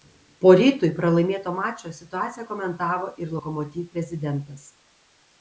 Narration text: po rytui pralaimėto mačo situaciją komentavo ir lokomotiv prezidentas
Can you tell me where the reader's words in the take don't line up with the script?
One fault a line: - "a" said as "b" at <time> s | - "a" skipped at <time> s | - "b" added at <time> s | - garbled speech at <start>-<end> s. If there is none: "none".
none